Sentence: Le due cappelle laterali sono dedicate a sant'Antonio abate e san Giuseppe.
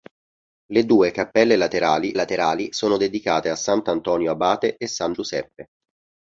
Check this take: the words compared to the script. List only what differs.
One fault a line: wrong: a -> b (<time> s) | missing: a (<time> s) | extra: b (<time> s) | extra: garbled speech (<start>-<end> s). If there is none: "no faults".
extra: laterali (2.1 s)